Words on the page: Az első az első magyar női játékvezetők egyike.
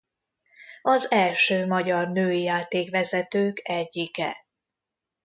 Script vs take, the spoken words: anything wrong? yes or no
yes